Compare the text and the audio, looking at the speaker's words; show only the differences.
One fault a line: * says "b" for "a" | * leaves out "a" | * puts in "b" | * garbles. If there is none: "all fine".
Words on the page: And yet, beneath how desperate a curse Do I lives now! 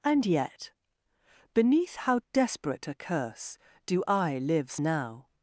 all fine